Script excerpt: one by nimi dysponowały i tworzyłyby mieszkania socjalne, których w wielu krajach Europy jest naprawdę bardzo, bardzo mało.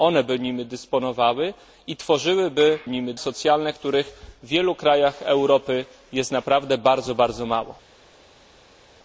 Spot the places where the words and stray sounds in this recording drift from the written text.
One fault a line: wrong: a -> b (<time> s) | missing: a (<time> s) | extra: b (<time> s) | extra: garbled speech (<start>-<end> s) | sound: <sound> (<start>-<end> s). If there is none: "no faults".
wrong: mieszkania -> nimi (2.9 s)